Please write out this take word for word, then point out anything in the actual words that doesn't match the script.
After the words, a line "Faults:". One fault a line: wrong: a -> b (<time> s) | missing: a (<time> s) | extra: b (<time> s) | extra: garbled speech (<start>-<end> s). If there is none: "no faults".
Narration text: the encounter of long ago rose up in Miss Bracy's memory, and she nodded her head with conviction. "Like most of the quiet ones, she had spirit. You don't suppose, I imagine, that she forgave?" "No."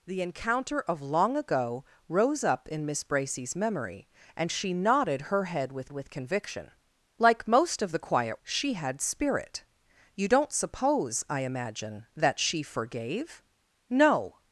the encounter of long ago rose up in Miss Bracy's memory, and she nodded her head with with conviction. "Like most of the quiet she had spirit. You don't suppose, I imagine, that she forgave?" "No."
Faults:
extra: with (5.9 s)
missing: ones (8.4 s)